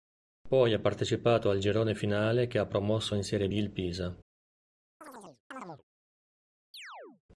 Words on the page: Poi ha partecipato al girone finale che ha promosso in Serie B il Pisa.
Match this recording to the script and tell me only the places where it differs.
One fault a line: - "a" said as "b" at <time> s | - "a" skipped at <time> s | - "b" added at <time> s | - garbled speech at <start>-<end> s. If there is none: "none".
none